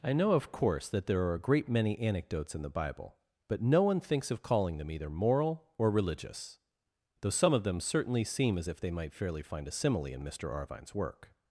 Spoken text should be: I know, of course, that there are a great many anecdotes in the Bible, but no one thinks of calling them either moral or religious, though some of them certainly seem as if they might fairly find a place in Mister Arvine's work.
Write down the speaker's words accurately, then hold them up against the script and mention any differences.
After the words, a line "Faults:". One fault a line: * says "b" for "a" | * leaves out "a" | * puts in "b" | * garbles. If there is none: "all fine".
I know, of course, that there are a great many anecdotes in the Bible, but no one thinks of calling them either moral or religious, though some of them certainly seem as if they might fairly find a simile in Mister Arvine's work.
Faults:
* says "simile" for "place"